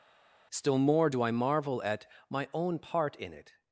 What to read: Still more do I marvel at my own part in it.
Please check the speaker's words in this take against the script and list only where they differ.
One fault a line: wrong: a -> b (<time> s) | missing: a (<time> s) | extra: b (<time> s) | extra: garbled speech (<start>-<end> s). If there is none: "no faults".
no faults